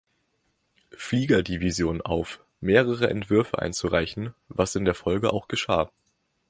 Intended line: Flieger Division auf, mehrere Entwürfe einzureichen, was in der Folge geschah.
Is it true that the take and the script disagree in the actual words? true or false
true